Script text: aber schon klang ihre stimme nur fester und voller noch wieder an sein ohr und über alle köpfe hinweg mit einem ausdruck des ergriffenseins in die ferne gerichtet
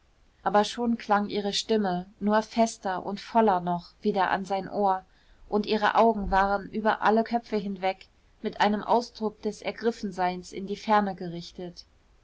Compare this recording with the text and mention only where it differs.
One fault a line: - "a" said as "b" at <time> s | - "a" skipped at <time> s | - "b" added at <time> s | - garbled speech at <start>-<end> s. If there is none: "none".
- "ihre augen waren" added at 5.7 s